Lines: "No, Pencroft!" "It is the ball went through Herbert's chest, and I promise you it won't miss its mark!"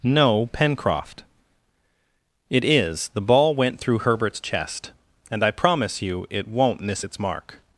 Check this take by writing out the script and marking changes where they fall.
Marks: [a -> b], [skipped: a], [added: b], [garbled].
"No, Pencroft!" "It is the ball went through Herbert's chest, and I promise you it won't miss its mark!"